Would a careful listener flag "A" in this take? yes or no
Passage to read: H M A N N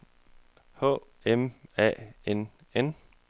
no